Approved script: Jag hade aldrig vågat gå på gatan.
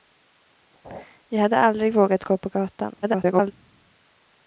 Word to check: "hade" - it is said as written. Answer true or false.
true